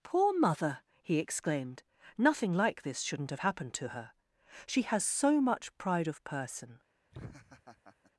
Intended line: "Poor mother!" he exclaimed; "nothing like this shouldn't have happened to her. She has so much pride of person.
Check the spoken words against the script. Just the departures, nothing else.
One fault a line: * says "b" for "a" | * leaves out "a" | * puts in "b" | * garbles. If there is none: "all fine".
all fine